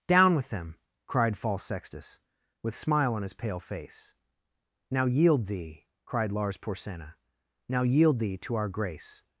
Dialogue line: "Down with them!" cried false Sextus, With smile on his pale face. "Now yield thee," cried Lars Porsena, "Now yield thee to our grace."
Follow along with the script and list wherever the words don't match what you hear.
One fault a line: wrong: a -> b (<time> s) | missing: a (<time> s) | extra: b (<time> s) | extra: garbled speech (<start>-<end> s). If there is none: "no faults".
no faults